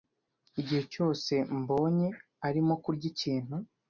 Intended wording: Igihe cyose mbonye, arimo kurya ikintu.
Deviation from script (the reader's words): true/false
false